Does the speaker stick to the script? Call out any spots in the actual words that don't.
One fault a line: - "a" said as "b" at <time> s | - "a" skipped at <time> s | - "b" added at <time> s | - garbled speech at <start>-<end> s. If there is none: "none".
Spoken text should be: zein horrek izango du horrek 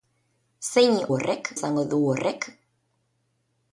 none